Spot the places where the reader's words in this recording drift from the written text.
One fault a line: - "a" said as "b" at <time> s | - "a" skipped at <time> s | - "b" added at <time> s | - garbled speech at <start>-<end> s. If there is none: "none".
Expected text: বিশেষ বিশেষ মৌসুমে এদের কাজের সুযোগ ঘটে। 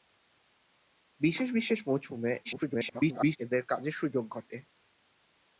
- garbled speech at 2.4-3.4 s